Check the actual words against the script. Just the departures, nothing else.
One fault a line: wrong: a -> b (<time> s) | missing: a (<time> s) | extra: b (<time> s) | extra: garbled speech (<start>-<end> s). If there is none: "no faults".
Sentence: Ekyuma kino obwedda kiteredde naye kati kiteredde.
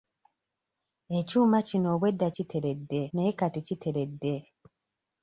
no faults